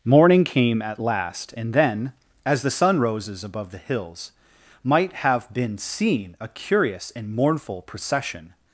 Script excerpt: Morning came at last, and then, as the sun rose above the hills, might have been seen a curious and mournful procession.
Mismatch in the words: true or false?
true